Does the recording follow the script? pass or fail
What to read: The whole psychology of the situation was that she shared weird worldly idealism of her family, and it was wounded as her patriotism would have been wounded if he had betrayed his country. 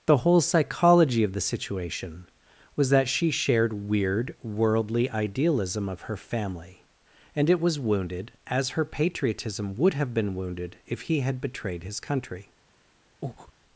pass